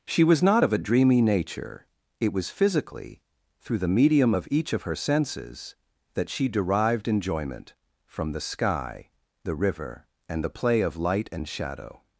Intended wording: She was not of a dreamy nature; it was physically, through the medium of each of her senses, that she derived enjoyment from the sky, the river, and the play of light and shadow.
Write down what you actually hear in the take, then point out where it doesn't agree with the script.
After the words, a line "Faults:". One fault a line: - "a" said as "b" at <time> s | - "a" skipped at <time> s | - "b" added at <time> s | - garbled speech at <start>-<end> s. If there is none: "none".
She was not of a dreamy nature; it was physically, through the medium of each of her senses, that she derived enjoyment from the sky, the river, and the play of light and shadow.
Faults:
none